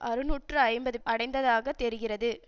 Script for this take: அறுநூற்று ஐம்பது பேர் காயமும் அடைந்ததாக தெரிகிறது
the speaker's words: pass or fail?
fail